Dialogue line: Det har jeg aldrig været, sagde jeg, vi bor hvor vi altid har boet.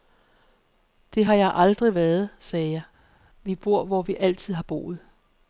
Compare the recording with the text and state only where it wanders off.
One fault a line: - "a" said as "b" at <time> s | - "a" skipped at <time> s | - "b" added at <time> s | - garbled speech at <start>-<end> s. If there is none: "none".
none